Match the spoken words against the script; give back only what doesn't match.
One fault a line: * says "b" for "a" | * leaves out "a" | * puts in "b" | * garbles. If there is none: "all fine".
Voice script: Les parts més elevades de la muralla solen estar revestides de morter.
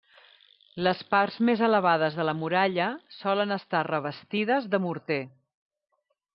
all fine